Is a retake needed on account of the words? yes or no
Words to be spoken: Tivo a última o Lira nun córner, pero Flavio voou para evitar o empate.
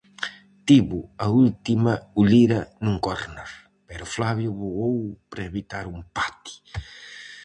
no